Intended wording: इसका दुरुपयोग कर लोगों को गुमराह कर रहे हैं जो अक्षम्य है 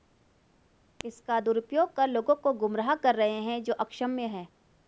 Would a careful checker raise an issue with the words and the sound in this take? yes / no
no